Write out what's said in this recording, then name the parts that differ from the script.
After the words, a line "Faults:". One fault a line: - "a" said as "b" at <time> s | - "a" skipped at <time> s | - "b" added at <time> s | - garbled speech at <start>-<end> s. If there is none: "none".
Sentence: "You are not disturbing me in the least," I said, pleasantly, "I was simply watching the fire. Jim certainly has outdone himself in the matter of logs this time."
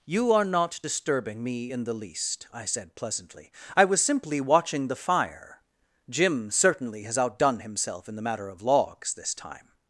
"You are not disturbing me in the least," I said, pleasantly, "I was simply watching the fire. Jim certainly has outdone himself in the matter of logs this time."
Faults:
none